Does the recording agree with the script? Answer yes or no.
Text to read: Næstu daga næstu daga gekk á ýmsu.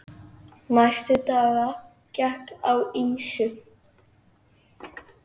no